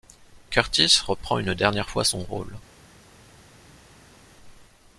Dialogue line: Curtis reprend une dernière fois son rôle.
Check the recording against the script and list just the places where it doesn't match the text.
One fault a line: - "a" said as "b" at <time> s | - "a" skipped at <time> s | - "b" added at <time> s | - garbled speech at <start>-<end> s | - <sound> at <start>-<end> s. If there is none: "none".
none